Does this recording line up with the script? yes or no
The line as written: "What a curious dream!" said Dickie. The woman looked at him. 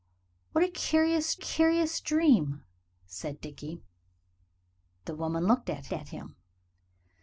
no